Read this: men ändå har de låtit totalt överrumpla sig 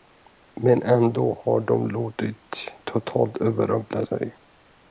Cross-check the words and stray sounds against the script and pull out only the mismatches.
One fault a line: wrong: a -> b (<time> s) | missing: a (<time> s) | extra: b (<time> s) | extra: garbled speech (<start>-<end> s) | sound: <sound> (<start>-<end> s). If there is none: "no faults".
no faults